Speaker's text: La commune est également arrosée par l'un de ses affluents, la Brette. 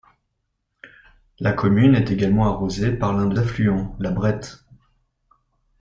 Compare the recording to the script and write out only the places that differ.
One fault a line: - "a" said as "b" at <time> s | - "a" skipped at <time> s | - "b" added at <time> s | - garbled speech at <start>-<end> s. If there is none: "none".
- "ses" skipped at 3.4 s